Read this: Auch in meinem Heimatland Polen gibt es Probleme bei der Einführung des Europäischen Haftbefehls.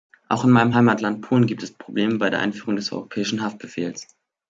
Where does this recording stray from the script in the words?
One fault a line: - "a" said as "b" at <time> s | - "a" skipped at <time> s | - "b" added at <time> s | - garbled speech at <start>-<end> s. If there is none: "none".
none